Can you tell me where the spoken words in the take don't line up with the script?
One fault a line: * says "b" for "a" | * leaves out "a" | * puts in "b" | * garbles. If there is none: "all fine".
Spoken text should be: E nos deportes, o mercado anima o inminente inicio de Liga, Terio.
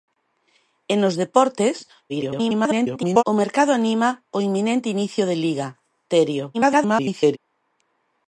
* garbles
* garbles